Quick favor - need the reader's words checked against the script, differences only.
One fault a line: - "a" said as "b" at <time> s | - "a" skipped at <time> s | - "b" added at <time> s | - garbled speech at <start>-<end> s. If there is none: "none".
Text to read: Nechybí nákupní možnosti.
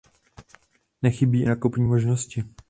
none